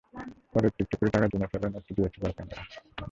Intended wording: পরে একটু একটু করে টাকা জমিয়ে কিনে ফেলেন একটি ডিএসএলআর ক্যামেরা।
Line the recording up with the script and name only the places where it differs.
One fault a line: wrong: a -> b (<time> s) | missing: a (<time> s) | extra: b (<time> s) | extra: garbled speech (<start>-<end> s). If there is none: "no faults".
missing: জমিয়ে (1.3 s)